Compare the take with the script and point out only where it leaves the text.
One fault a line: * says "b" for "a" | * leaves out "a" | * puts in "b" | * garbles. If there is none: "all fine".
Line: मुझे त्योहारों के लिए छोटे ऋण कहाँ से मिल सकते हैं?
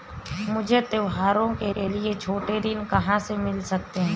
* puts in "के"